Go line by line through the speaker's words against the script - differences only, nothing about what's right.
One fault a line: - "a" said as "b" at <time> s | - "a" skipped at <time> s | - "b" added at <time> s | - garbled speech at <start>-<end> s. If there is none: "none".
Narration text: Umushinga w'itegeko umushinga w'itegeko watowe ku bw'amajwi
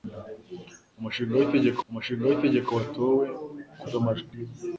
none